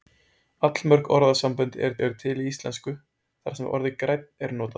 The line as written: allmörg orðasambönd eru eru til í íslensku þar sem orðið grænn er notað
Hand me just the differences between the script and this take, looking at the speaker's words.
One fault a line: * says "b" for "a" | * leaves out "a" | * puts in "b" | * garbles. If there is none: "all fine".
all fine